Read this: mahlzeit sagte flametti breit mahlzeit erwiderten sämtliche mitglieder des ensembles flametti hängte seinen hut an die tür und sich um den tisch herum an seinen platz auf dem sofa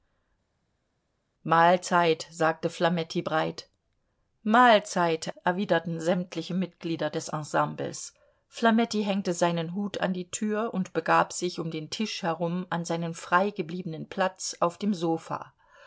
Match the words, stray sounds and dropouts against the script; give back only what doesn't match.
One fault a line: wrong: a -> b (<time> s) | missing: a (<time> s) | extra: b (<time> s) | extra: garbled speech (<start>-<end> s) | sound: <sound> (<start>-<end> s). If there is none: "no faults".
extra: begab (10.9 s)
extra: frei gebliebenen (13.1 s)